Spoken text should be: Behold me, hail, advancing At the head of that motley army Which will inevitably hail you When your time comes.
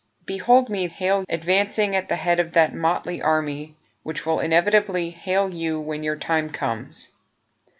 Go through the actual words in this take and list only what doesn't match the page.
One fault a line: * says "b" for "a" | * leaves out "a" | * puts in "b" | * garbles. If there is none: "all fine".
all fine